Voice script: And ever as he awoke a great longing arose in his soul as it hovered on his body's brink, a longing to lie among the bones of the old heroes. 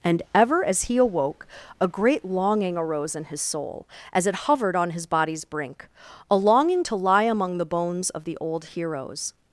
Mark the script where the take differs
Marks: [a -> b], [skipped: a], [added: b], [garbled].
And ever as he awoke a great longing arose in his soul as it hovered on his body's brink, a longing to lie among the bones of the old heroes.